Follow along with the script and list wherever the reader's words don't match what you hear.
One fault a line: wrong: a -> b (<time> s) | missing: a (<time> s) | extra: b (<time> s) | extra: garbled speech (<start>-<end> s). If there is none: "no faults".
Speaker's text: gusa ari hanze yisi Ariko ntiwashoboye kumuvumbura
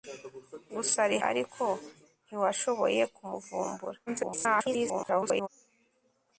missing: hanze yisi (1.2 s)
extra: garbled speech (4.1-5.5 s)